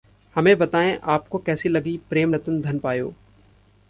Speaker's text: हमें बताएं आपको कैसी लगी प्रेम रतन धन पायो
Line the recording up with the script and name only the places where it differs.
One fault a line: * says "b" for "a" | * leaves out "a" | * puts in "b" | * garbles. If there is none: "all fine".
all fine